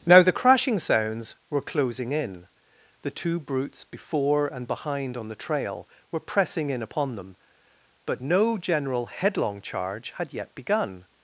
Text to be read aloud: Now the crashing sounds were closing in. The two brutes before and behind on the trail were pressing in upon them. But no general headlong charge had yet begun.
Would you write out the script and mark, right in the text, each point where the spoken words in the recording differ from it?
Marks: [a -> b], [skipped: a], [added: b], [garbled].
Now the crashing sounds were closing in. The two brutes before and behind on the trail were pressing in upon them. But no general headlong charge had yet begun.